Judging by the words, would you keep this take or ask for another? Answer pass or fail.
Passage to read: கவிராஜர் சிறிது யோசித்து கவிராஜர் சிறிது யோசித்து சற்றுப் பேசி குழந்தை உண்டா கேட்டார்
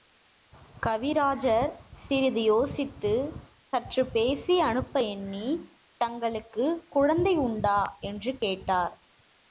fail